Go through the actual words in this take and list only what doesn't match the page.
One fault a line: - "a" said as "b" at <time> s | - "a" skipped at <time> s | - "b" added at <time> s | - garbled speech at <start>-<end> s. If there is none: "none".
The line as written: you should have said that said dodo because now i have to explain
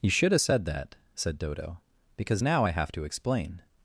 none